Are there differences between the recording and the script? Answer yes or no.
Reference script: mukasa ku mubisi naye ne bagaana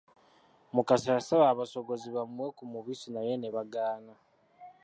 yes